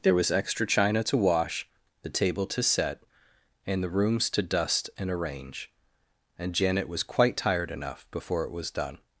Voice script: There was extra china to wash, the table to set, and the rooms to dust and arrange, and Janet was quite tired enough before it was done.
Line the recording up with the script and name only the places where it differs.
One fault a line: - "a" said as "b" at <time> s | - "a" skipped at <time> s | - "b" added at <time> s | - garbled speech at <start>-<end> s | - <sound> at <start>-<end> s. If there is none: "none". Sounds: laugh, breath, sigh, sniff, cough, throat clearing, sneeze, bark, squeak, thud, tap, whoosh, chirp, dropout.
none